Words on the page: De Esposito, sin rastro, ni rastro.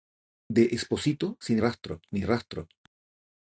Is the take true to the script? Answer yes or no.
yes